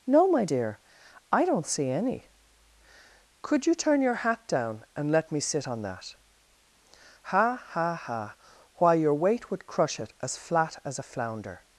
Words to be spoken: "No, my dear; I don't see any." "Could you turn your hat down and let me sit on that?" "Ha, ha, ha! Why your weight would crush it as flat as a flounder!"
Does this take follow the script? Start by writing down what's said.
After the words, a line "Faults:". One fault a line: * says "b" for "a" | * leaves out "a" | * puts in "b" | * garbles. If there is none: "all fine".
"No, my dear; I don't see any." "Could you turn your hat down and let me sit on that?" "Ha, ha, ha! Why your weight would crush it as flat as a flounder!"
Faults:
all fine